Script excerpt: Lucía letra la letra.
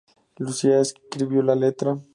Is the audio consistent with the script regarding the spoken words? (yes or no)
no